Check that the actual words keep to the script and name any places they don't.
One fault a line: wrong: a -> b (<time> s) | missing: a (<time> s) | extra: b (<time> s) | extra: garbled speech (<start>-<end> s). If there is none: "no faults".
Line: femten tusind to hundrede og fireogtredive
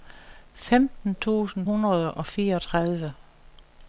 missing: to (1.7 s)